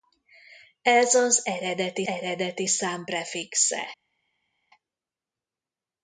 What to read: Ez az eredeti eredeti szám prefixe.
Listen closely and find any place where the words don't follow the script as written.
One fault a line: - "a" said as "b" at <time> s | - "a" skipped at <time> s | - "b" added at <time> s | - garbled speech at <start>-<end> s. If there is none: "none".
none